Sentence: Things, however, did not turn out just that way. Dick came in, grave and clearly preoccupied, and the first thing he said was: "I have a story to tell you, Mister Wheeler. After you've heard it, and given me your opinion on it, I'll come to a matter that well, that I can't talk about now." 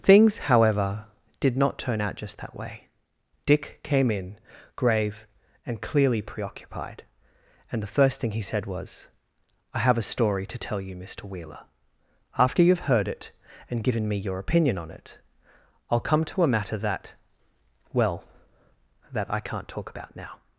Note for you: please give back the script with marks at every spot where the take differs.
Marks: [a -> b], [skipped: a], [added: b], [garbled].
Things, however, did not turn out just that way. Dick came in, grave and clearly preoccupied, and the first thing he said was: "I have a story to tell you, Mister Wheeler. After you've heard it, and given me your opinion on it, I'll come to a matter that well, that I can't talk about now."